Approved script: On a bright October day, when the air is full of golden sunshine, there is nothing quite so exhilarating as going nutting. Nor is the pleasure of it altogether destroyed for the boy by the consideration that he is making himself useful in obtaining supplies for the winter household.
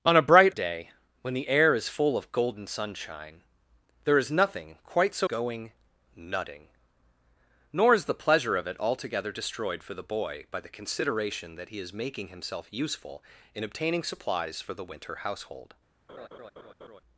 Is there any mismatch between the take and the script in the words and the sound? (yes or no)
yes